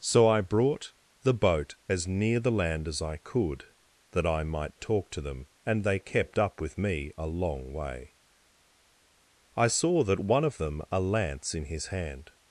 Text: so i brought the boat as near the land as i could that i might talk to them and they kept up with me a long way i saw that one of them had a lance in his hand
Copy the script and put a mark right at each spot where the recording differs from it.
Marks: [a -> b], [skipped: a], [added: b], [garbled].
so i brought the boat as near the land as i could that i might talk to them and they kept up with me a long way i saw that one of them [skipped: had] a lance in his hand